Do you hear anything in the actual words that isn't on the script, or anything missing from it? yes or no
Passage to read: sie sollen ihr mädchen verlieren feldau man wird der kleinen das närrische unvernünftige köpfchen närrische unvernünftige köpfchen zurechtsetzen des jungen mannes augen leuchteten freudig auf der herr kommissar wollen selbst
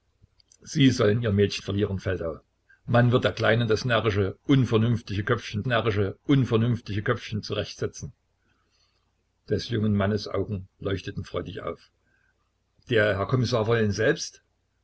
no